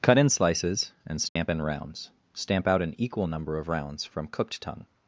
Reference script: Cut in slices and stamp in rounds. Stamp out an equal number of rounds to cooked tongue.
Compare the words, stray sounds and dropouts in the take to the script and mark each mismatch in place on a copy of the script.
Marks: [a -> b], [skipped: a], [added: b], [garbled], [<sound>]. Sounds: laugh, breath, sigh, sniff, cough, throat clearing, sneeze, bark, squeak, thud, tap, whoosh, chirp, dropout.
Cut in slices and stamp [dropout] in rounds. Stamp out an equal number of rounds [to -> from] cooked tongue.